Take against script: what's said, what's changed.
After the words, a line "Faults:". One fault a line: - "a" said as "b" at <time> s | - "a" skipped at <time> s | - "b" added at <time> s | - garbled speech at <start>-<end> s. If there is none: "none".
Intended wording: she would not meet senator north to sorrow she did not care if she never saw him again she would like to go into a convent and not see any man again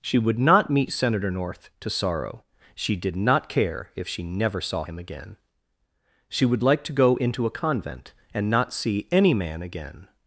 she would not meet senator north to sorrow she did not care if she never saw him again she would like to go into a convent and not see any man again
Faults:
none